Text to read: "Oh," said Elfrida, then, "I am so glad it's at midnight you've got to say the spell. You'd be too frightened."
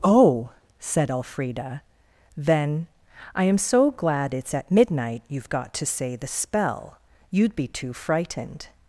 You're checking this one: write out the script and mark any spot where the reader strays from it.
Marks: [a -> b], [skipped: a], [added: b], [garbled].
"Oh," said Elfrida, then, "I am so glad it's at midnight you've got to say the spell. You'd be too frightened."